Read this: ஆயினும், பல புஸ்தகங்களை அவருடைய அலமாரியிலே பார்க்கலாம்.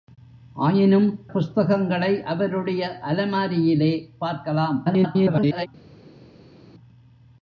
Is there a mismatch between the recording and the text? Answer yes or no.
yes